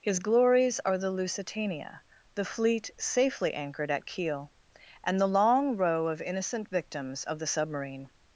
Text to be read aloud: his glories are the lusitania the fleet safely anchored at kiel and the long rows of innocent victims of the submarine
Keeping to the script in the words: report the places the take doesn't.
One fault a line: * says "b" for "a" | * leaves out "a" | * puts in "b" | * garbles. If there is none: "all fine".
* says "row" for "rows"